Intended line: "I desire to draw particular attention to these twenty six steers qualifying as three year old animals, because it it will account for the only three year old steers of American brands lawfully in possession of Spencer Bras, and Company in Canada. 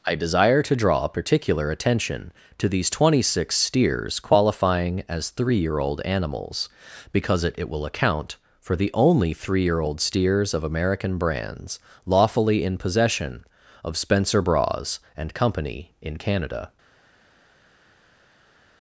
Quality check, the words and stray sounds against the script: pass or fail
pass